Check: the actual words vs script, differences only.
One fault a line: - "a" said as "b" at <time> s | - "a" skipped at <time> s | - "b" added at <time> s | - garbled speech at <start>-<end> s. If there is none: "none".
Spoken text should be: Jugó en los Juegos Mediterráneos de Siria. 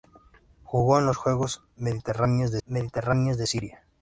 - "Mediterráneos de" added at 2.6 s